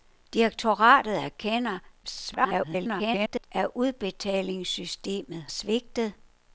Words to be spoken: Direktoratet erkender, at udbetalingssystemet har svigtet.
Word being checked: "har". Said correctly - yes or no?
no